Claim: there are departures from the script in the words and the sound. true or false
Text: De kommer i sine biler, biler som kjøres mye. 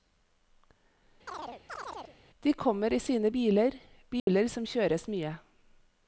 true